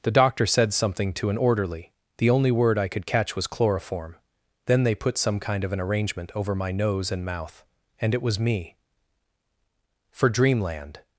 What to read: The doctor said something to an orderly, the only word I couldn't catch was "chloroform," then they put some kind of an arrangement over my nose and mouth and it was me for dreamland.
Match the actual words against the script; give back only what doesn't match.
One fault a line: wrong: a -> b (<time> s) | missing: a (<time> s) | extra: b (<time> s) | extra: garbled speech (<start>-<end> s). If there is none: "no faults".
wrong: couldn't -> could (2.9 s)